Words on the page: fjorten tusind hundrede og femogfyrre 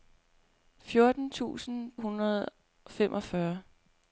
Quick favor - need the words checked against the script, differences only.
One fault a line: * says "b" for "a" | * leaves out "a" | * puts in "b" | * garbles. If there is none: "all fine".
all fine